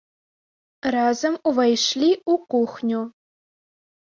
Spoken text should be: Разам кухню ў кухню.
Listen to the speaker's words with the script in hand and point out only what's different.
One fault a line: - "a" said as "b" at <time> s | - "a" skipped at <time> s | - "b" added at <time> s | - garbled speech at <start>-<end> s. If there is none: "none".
- "кухню" said as "увайшлі" at 1.5 s